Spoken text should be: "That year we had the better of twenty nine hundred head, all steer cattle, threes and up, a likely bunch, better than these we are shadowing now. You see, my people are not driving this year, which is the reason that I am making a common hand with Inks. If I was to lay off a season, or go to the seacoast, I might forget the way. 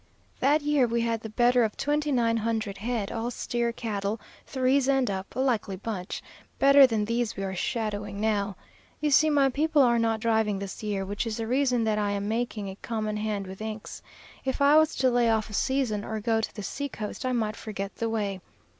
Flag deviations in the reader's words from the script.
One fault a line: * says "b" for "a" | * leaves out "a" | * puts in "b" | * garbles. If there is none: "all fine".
all fine